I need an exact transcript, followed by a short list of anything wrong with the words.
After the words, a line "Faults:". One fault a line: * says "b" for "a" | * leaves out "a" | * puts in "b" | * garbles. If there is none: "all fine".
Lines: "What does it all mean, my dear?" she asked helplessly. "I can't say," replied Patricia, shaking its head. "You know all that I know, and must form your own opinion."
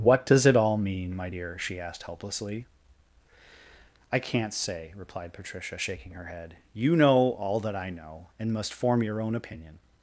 "What does it all mean, my dear?" she asked helplessly. "I can't say," replied Patricia, shaking her head. "You know all that I know, and must form your own opinion."
Faults:
* says "her" for "its"